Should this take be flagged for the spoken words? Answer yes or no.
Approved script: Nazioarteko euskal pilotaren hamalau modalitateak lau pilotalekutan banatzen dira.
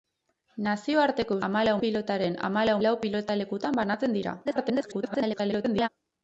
yes